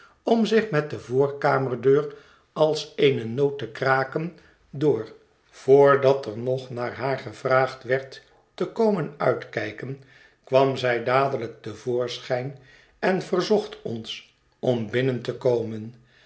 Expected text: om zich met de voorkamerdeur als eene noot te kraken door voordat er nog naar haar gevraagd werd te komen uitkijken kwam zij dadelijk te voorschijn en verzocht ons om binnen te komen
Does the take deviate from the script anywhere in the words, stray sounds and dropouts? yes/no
no